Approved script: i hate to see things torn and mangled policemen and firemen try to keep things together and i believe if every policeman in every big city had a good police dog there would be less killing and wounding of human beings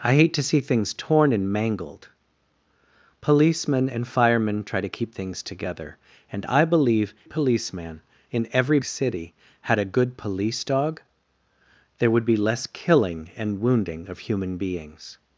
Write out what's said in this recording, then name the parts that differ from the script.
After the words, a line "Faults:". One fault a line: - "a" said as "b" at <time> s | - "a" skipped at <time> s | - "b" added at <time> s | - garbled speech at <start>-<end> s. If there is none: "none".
i hate to see things torn and mangled policemen and firemen try to keep things together and i believe policeman in every city had a good police dog there would be less killing and wounding of human beings
Faults:
- "if every" skipped at 7.1 s
- "big" skipped at 8.8 s